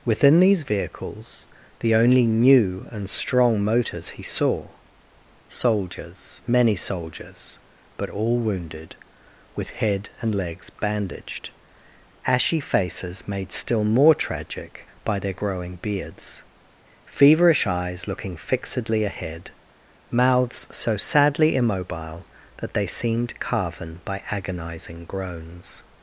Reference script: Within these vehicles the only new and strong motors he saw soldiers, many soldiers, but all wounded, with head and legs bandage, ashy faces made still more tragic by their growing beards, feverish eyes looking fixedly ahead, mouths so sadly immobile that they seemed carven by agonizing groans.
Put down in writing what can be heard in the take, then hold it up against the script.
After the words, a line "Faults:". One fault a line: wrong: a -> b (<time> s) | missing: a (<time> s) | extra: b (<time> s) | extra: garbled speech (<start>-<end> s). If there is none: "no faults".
Within these vehicles the only new and strong motors he saw soldiers, many soldiers, but all wounded, with head and legs bandaged, ashy faces made still more tragic by their growing beards, feverish eyes looking fixedly ahead, mouths so sadly immobile that they seemed carven by agonizing groans.
Faults:
wrong: bandage -> bandaged (10.7 s)